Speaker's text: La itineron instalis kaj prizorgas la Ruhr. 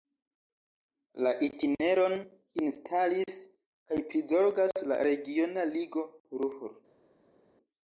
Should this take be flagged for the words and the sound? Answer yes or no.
yes